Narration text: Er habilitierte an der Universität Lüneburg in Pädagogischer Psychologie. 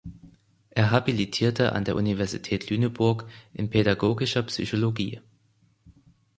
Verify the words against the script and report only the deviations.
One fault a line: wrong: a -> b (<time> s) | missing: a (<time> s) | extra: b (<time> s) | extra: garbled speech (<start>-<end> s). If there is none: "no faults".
no faults